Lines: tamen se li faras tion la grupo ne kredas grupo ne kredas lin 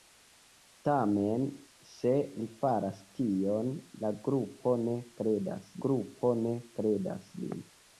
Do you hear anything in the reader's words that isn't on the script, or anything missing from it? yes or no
no